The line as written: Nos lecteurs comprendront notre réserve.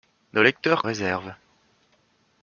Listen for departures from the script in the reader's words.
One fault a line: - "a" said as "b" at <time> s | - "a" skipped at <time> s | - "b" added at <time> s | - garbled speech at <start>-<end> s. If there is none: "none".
- "comprendront notre" skipped at 0.9 s